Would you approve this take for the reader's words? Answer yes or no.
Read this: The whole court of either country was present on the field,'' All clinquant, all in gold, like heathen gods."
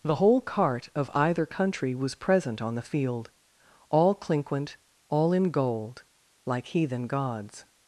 no